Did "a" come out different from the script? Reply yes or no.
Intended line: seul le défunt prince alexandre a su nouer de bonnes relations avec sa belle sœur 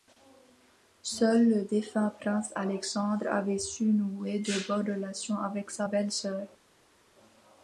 yes